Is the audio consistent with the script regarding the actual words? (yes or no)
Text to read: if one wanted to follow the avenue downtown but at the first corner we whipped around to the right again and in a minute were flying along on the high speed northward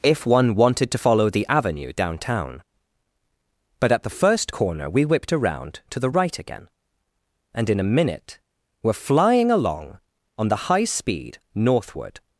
yes